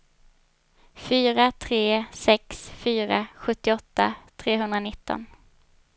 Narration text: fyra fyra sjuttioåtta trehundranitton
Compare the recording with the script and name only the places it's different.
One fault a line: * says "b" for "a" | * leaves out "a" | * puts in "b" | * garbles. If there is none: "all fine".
* puts in "tre sex"